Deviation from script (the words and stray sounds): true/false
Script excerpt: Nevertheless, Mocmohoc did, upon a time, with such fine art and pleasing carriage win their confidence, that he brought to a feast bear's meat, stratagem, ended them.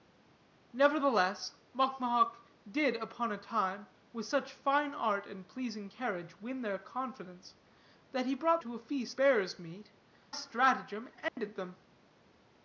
true